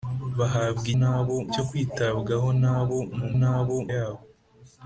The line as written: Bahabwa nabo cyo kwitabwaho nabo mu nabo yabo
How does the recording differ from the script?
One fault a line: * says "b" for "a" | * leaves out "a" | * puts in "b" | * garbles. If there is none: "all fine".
all fine